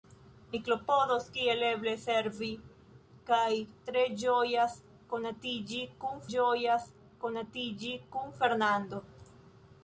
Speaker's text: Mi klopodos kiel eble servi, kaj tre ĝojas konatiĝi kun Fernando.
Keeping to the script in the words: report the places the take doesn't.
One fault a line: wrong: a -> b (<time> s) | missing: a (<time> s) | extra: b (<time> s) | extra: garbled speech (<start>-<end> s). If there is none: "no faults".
extra: ĝojas konatiĝi kun (6.3 s)